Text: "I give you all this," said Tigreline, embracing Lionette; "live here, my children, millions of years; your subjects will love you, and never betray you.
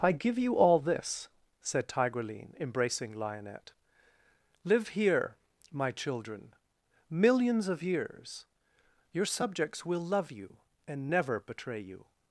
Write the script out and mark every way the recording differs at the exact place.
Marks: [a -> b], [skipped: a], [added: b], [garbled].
"I give you all this," said Tigreline, embracing Lionette; "live here, my children, millions of years; your subjects will love you, and never betray you.